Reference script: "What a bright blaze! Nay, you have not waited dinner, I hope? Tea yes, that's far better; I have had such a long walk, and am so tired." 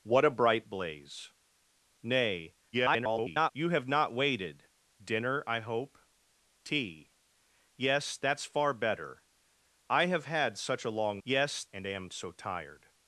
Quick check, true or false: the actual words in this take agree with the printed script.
false